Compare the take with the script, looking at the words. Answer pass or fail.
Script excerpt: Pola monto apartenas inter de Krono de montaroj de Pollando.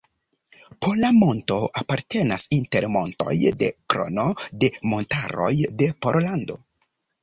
fail